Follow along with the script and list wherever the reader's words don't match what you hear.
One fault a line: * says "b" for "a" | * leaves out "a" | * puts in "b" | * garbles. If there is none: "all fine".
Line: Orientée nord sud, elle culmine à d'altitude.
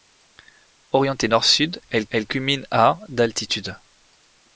* puts in "elle"